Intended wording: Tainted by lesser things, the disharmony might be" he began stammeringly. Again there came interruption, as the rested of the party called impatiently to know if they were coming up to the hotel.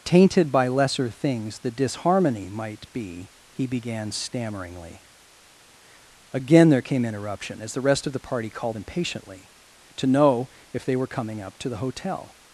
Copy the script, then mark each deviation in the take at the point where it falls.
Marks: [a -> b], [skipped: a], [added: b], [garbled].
Tainted by lesser things, the disharmony might be" he began stammeringly. Again there came interruption, as the [rested -> rest] of the party called impatiently to know if they were coming up to the hotel.